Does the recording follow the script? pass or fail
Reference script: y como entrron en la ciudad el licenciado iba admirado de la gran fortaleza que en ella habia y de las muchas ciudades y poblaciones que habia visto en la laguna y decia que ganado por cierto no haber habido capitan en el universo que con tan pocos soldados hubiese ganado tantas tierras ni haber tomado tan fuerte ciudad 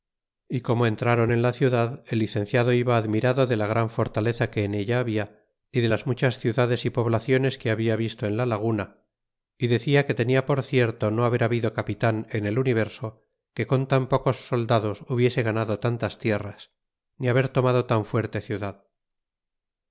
fail